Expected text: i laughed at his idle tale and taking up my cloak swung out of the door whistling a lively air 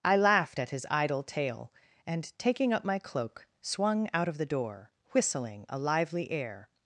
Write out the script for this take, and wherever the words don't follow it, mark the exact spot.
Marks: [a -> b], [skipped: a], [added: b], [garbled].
i laughed at his idle tale and taking up my cloak swung out of the door whistling a lively air